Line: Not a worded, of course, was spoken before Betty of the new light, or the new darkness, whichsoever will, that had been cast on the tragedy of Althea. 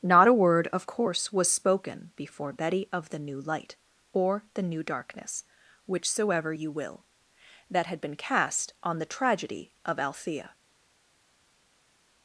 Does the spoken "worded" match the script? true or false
false